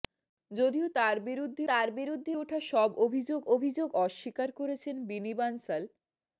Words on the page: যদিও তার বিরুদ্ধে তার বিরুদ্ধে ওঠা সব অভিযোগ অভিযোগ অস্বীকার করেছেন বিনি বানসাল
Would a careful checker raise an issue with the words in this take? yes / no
no